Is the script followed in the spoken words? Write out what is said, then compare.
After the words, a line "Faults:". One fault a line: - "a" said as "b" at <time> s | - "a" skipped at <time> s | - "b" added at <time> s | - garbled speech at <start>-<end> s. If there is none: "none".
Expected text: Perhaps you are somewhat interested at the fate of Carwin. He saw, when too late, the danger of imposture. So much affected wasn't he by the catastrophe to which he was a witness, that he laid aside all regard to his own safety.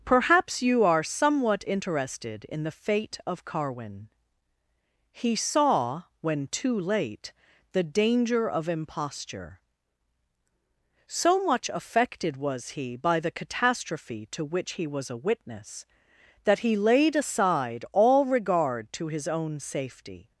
Perhaps you are somewhat interested in the fate of Carwin. He saw, when too late, the danger of imposture. So much affected was he by the catastrophe to which he was a witness, that he laid aside all regard to his own safety.
Faults:
- "at" said as "in" at 2.5 s
- "wasn't" said as "was" at 12.3 s